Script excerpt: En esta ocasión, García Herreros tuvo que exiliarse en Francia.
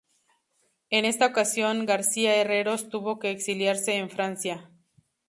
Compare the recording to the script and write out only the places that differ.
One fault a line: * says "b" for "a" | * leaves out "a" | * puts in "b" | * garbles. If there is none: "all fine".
all fine